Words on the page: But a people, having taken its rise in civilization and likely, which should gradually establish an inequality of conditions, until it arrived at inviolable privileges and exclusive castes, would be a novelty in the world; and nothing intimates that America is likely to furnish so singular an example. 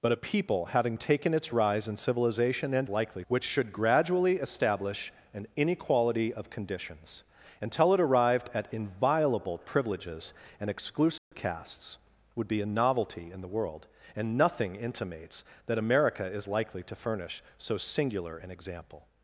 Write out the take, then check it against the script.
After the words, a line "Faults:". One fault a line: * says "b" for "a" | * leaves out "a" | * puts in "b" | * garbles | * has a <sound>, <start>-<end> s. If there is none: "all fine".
But a people, having taken its rise in civilization and likely, which should gradually establish an inequality of conditions, until it arrived at inviolable privileges and exclusive castes, would be a novelty in the world; and nothing intimates that America is likely to furnish so singular an example.
Faults:
* has a dropout, 11.2-11.3 s